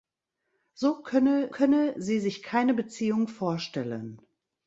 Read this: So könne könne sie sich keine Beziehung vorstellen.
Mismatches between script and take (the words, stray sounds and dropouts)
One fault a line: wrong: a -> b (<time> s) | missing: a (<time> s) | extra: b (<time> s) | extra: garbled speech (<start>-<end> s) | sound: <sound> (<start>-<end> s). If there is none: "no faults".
no faults